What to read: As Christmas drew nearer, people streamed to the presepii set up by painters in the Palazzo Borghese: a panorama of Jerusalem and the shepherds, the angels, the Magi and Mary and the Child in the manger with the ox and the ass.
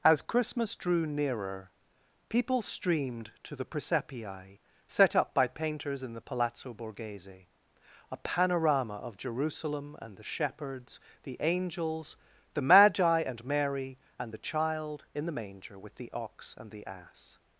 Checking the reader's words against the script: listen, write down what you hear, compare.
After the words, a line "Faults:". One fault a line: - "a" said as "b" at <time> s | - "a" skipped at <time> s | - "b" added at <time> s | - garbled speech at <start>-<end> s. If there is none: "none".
As Christmas drew nearer, people streamed to the presepii set up by painters in the Palazzo Borghese: a panorama of Jerusalem and the shepherds, the angels, the Magi and Mary and the Child in the manger with the ox and the ass.
Faults:
none